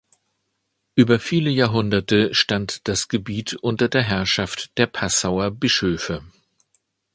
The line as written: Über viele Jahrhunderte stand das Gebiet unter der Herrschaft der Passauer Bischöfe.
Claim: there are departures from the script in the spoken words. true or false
false